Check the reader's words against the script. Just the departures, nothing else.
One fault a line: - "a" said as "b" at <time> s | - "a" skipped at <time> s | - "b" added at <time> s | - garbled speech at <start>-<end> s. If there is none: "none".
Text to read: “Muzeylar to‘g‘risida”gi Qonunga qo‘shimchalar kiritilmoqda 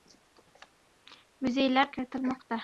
- "to‘g‘risida”gi Qonunga qo‘shimchalar" skipped at 1.9 s